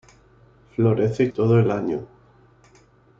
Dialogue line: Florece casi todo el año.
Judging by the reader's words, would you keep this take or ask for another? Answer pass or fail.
fail